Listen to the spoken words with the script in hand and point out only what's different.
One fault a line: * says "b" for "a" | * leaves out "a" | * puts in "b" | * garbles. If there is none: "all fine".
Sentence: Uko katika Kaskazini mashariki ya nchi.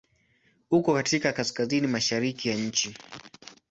all fine